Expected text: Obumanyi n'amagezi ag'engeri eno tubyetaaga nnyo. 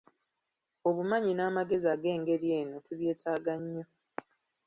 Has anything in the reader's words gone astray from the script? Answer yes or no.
no